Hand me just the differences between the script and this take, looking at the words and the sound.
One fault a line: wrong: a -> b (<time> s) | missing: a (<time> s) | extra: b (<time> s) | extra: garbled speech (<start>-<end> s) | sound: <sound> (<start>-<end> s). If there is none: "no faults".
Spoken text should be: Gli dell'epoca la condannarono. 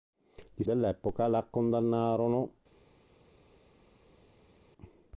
no faults